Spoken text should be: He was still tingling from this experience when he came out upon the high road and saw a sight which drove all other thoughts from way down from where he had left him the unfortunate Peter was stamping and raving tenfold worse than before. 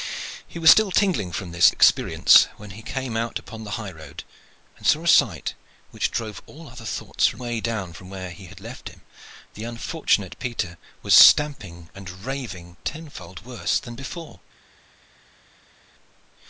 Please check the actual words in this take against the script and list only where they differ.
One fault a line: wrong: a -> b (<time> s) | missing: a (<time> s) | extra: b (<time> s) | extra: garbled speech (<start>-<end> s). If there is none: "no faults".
no faults